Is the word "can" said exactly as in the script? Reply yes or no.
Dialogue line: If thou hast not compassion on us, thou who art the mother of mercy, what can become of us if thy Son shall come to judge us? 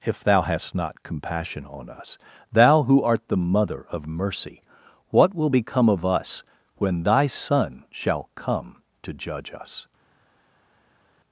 no